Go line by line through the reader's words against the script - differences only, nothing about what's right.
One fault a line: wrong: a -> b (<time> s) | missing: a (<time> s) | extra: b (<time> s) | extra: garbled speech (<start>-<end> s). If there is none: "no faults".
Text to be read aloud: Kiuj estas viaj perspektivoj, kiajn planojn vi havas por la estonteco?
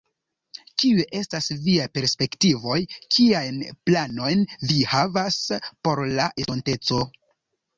no faults